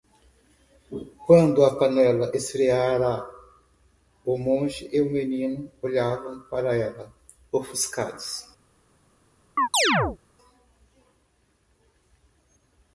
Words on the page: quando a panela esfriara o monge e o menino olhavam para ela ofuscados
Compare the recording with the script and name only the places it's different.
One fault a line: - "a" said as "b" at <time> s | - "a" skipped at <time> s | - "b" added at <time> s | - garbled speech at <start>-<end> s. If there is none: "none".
none